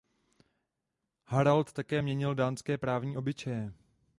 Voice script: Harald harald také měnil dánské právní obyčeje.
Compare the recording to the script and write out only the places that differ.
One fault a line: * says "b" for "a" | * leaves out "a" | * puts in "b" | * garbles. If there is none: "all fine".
* leaves out "harald"